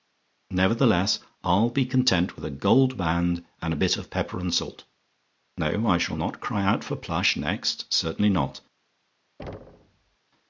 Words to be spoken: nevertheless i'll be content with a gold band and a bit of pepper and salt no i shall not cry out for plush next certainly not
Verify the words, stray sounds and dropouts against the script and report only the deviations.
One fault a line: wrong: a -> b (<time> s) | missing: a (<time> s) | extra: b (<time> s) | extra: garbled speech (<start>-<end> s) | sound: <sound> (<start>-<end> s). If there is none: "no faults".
sound: thud (9.4-10.2 s)